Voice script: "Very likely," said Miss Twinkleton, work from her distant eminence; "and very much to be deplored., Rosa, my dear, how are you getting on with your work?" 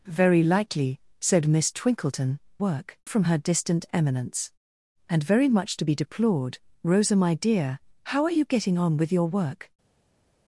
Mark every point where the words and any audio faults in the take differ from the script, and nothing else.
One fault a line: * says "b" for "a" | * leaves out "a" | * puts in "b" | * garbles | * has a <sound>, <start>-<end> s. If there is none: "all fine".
all fine